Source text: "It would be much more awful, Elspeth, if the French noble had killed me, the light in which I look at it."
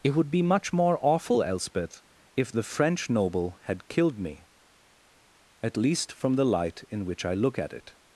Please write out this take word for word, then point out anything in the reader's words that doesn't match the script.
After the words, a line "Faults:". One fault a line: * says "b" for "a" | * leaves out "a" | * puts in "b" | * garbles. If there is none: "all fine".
"It would be much more awful, Elspeth, if the French noble had killed me, at least from the light in which I look at it."
Faults:
* puts in "at least from"